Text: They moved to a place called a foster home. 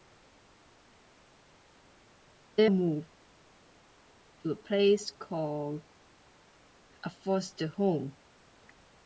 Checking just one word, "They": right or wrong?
right